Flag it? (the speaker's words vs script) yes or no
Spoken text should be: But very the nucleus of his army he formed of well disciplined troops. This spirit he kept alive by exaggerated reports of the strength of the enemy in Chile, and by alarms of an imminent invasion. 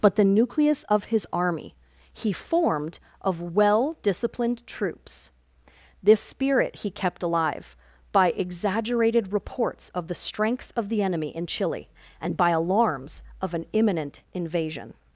yes